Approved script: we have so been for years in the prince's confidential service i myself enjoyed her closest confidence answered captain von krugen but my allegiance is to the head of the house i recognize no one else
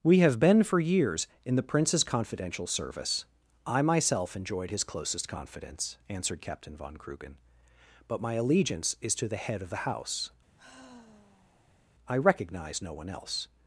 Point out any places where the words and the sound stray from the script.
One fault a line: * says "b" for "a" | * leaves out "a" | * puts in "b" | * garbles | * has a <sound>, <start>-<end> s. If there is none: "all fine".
* leaves out "so"
* says "his" for "her"
* has a sigh, 10.6-11.8 s